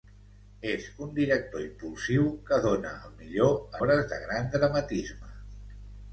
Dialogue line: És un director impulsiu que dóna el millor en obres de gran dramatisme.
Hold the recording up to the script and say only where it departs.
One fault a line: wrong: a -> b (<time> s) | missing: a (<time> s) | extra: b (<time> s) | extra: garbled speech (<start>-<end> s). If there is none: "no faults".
missing: en (3.5 s)